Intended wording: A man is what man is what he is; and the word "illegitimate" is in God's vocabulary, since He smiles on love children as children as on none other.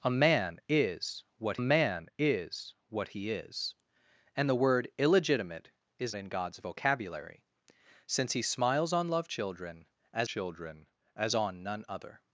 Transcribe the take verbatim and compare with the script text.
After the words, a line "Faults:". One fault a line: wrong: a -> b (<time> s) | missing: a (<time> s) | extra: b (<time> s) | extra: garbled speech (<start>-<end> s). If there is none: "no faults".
A man is what man is what he is; and the word "illegitimate" is in God's vocabulary, since He smiles on love children as children as on none other.
Faults:
no faults